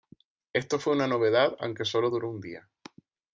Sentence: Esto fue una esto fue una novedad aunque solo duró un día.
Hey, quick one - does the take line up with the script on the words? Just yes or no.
no